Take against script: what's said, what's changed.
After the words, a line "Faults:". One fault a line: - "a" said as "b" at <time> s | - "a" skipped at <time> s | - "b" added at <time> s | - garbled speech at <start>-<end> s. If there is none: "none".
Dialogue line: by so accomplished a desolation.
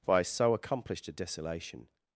by so accomplished a desolation.
Faults:
none